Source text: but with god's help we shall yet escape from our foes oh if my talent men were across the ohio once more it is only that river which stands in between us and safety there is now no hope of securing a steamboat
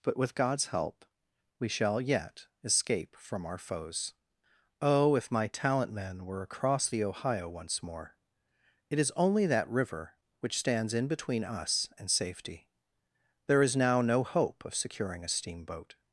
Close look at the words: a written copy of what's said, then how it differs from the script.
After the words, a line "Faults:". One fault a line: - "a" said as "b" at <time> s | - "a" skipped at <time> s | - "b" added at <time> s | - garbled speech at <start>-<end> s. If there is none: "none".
but with god's help we shall yet escape from our foes oh if my talent men were across the ohio once more it is only that river which stands in between us and safety there is now no hope of securing a steamboat
Faults:
none